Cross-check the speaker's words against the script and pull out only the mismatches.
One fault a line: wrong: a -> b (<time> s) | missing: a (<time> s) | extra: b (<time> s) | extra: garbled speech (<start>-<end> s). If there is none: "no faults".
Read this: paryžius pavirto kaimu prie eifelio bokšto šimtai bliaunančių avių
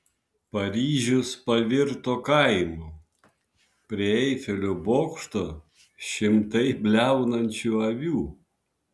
no faults